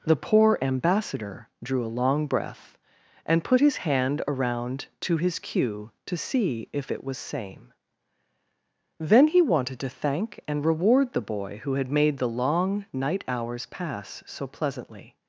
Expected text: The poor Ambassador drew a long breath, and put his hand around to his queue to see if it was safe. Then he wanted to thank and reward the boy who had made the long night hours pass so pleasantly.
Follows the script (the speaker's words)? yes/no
no